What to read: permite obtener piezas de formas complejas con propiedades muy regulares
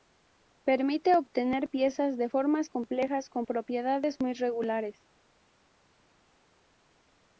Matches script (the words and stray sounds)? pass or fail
pass